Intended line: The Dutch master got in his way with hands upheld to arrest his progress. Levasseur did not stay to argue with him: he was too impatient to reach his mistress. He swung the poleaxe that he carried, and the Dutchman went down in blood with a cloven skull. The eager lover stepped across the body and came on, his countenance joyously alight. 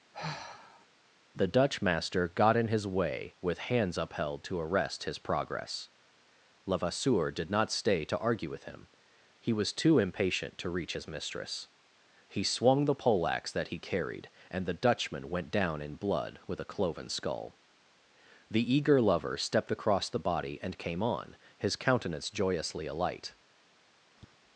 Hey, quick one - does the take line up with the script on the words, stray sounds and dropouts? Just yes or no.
no